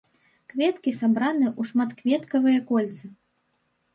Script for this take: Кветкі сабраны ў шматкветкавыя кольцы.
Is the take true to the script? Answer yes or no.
yes